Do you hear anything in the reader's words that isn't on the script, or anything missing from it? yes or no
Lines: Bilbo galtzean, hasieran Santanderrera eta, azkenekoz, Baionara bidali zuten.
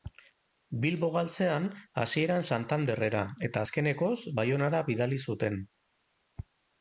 no